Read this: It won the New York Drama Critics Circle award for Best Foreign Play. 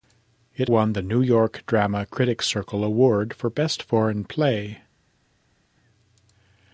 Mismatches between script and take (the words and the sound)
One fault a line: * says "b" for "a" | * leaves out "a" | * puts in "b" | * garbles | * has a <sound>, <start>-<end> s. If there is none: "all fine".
all fine